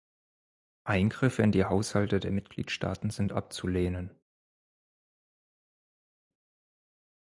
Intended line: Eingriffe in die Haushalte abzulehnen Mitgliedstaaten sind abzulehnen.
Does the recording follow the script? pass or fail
fail